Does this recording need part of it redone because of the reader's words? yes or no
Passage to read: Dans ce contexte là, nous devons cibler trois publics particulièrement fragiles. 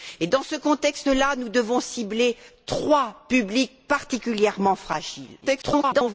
yes